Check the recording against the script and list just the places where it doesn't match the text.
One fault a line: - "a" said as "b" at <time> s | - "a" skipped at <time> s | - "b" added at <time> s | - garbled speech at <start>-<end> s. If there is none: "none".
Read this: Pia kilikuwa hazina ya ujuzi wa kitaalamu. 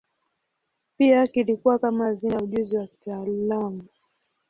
- "kama" added at 1.8 s